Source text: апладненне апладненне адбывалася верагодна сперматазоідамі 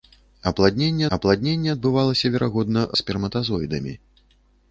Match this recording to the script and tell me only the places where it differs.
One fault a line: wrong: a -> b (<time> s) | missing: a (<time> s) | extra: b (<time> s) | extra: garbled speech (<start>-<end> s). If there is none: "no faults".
no faults